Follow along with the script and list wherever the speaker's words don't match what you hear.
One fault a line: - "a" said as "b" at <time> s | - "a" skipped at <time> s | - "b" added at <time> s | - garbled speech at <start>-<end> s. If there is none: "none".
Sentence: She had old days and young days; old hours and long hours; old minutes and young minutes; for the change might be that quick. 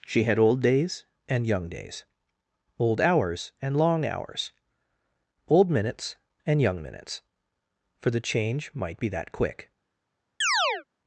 none